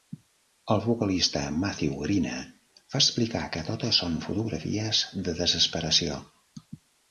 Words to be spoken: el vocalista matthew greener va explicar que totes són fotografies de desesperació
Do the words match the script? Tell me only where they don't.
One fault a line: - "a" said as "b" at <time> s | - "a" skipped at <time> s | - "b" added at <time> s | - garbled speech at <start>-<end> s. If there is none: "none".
none